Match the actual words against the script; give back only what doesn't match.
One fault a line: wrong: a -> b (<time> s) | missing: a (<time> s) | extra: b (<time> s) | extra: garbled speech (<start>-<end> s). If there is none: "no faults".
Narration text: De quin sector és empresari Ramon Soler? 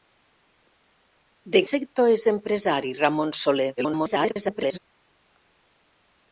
missing: quin (1.6 s)
extra: garbled speech (3.8-4.8 s)